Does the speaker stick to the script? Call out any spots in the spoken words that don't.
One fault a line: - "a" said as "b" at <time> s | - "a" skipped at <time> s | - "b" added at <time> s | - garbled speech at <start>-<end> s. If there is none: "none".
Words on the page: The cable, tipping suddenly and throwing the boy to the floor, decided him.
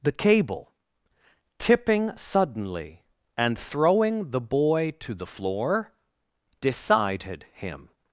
none